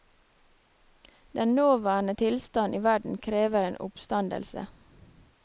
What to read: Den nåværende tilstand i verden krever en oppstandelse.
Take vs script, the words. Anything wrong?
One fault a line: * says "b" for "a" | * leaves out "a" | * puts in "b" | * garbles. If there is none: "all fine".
all fine